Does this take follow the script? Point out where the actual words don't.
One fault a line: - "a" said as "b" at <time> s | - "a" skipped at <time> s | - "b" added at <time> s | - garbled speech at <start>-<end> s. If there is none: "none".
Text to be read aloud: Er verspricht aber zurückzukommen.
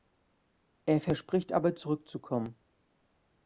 none